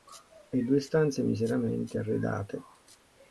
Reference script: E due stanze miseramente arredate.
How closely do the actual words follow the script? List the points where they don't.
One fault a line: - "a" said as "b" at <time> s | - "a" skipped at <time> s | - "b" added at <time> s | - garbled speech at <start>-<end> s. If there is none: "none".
none